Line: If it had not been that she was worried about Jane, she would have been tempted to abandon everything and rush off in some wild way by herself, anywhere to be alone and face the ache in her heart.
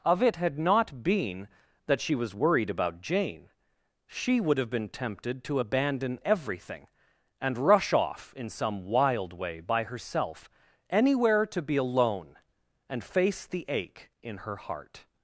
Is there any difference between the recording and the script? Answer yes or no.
yes